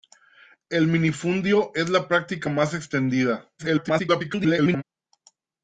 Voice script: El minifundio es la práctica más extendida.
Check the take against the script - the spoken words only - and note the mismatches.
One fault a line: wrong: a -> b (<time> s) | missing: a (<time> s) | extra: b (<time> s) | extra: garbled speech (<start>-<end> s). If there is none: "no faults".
extra: garbled speech (3.6-4.8 s)